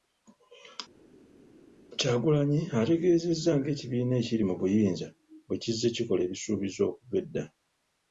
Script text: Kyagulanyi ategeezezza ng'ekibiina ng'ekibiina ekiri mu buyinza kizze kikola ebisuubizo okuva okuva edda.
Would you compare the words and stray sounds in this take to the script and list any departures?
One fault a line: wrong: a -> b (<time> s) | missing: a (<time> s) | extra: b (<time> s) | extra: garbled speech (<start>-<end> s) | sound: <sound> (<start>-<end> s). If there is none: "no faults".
missing: ng'ekibiina (4.1 s)
extra: bwe (5.5 s)
missing: okuva (7.2 s)